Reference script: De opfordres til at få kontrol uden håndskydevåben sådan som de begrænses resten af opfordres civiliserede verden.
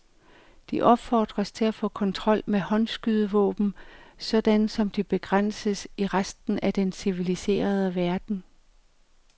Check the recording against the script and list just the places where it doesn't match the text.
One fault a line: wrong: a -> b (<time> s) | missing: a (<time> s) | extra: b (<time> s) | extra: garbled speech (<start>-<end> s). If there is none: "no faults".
wrong: uden -> med (2.5 s)
extra: i (6.0 s)
wrong: opfordres -> den (6.7 s)